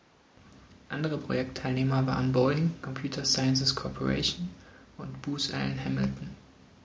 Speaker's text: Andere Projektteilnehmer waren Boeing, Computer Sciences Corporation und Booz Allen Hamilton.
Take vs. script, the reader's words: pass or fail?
pass